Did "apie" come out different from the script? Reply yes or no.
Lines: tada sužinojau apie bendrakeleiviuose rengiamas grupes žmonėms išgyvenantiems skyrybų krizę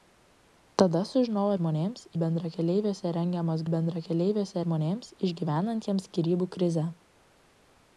yes